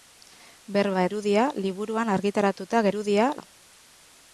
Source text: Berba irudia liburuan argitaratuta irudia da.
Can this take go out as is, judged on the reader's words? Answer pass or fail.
pass